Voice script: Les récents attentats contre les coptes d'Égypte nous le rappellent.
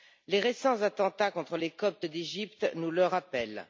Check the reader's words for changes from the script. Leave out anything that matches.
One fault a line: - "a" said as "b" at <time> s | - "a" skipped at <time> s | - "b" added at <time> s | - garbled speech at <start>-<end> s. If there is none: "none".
none